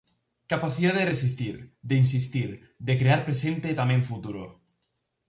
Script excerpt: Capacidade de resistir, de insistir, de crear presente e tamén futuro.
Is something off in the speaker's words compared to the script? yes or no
no